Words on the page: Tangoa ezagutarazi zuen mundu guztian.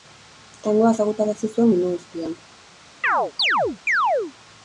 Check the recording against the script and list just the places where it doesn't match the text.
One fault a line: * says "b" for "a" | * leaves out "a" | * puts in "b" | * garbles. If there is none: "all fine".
all fine